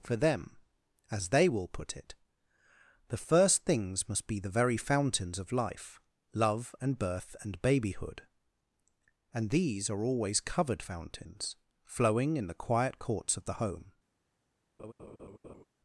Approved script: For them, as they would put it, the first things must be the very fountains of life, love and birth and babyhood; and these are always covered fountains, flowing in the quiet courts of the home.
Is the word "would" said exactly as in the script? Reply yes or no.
no